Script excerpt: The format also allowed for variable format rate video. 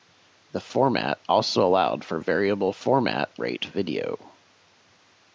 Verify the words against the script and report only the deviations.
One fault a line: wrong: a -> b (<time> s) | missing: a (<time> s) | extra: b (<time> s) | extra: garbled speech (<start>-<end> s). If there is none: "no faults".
no faults